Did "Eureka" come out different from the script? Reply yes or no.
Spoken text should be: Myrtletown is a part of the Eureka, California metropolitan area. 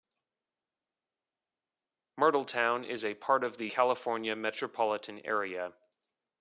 yes